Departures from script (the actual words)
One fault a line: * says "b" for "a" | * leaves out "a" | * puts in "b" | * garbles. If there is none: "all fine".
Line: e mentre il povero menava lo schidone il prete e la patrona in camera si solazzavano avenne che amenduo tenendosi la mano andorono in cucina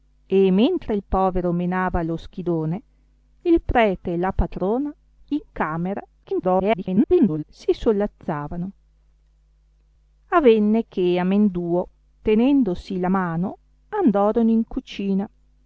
* garbles